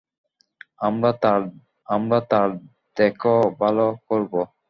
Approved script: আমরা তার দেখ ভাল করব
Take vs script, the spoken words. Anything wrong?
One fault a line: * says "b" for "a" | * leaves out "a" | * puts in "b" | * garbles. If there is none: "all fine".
* puts in "আমরা তার"